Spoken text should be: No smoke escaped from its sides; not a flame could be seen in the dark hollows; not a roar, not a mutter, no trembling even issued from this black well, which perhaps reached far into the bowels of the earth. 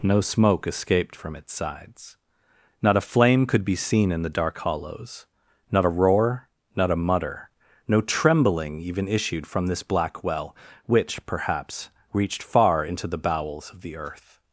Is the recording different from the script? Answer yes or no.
no